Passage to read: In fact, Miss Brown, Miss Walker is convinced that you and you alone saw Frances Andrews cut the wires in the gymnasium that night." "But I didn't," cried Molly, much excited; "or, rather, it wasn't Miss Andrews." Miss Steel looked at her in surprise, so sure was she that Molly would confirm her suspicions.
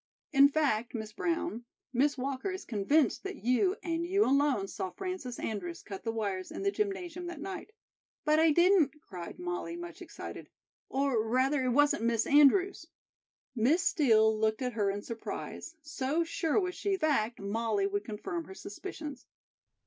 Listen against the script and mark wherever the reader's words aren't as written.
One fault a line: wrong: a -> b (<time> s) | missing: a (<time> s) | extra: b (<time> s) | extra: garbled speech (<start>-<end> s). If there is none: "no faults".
wrong: that -> fact (16.9 s)